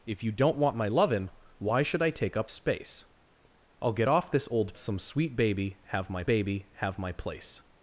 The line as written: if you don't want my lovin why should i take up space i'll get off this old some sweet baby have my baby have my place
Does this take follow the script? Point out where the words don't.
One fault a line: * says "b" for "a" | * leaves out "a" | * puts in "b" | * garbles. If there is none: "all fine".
all fine